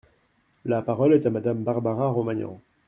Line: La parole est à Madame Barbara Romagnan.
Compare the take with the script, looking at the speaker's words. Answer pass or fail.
pass